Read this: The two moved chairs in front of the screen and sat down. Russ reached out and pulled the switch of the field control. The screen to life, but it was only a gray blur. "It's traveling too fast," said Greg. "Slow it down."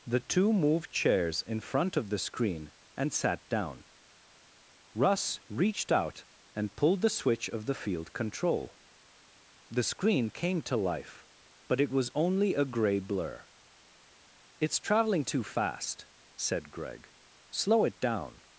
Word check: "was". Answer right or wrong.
right